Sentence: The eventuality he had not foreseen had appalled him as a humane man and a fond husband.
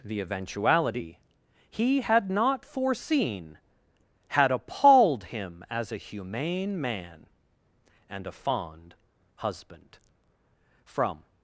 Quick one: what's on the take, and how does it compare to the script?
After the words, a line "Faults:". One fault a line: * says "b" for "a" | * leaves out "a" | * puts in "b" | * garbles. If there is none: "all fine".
The eventuality he had not foreseen had appalled him as a humane man and a fond husband. From
Faults:
* puts in "From"